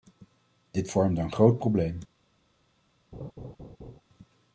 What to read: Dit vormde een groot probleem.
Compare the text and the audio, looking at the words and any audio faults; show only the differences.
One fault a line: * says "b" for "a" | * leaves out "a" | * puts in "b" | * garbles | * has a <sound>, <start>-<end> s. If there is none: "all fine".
* has a laugh, 3.1-4.0 s